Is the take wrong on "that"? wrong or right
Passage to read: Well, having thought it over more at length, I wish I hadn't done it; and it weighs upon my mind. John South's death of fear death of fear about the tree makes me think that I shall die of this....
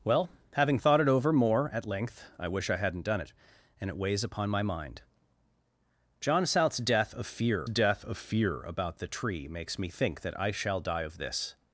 right